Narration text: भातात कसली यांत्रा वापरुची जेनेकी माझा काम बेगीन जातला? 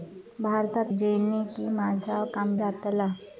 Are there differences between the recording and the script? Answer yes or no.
yes